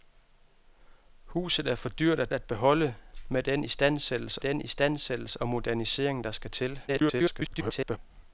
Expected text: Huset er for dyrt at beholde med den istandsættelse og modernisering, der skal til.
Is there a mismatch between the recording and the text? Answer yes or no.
yes